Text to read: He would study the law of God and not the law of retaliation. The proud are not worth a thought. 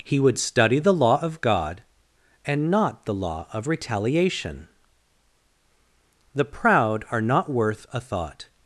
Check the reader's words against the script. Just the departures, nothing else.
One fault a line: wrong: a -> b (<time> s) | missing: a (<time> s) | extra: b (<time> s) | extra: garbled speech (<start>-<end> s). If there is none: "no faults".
no faults